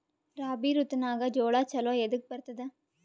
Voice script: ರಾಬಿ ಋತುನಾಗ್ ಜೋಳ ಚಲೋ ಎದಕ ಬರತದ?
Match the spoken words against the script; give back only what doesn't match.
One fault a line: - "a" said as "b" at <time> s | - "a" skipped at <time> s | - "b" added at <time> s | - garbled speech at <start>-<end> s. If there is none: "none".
none